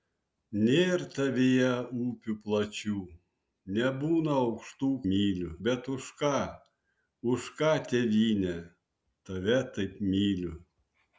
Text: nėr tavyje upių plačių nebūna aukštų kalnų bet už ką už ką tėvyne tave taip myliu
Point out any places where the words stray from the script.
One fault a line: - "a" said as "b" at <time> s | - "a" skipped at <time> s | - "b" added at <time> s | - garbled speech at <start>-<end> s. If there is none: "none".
- "kalnų" said as "myliu" at 5.1 s